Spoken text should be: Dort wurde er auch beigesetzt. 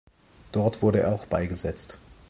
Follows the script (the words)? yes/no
yes